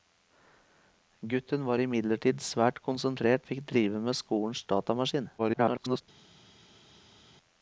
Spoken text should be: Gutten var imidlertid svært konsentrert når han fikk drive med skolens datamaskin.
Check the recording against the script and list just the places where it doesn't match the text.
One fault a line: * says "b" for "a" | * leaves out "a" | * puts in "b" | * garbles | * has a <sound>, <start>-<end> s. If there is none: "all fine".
* leaves out "når han"
* garbles